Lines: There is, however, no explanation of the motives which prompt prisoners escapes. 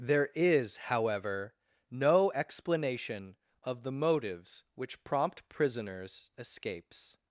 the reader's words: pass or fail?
pass